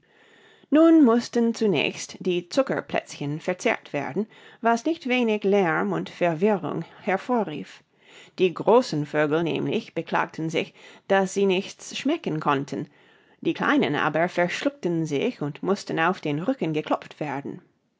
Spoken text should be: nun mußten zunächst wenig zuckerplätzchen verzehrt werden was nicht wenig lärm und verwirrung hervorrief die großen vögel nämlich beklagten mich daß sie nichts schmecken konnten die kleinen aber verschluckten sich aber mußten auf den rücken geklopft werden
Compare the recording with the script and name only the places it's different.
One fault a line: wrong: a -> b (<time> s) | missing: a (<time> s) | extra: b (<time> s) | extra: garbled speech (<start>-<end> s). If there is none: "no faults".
wrong: wenig -> die (2.2 s)
wrong: mich -> sich (10.5 s)
wrong: aber -> und (15.4 s)